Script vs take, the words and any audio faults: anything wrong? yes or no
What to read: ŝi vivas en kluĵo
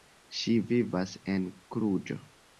no